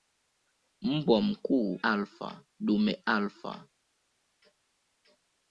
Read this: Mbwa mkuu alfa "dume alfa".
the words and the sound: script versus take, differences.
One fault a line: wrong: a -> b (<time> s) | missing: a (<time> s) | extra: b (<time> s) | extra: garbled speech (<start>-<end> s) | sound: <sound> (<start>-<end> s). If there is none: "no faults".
no faults